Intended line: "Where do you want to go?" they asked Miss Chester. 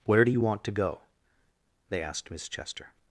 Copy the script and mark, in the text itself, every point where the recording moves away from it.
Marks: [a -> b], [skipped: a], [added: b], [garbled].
"Where do you want to go?" they asked Miss Chester.